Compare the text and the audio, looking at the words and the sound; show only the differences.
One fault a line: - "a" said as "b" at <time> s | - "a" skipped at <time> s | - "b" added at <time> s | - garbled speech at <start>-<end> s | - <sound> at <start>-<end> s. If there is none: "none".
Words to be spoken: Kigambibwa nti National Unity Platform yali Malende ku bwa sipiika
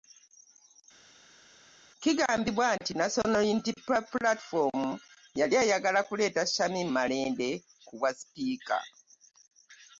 - "eyagala kuleeta Shamim" added at 5.6 s